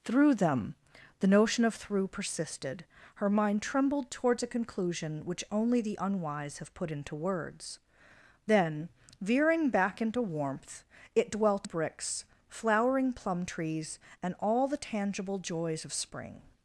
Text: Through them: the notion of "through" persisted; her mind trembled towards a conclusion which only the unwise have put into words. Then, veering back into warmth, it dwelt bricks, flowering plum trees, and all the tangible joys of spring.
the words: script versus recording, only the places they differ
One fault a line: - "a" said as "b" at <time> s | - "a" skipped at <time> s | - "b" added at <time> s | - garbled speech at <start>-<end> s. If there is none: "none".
none